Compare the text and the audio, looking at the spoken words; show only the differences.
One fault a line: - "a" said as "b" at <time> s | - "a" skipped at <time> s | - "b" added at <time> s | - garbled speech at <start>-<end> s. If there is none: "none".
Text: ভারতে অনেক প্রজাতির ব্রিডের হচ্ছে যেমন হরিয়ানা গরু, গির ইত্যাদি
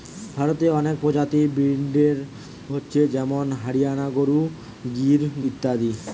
none